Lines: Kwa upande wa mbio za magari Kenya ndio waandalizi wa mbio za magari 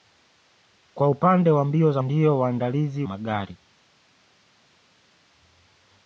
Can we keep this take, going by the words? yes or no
no